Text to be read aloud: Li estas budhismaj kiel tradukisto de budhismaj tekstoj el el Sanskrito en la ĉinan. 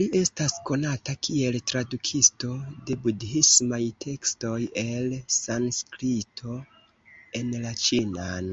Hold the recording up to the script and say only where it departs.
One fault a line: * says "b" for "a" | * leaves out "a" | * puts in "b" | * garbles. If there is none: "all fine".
* says "konata" for "budhismaj"
* leaves out "el"